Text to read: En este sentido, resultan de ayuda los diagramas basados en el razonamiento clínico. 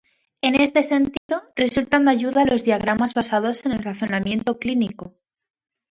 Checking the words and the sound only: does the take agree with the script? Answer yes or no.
no